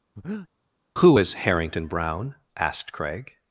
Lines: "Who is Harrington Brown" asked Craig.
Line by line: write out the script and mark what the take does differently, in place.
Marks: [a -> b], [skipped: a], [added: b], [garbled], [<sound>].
[breath] "Who is Harrington Brown" asked Craig.